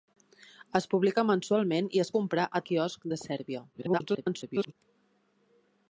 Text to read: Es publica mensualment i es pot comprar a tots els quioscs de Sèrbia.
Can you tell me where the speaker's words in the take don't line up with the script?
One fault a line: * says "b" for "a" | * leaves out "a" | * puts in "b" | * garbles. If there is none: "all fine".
* leaves out "pot"
* leaves out "tots els"
* garbles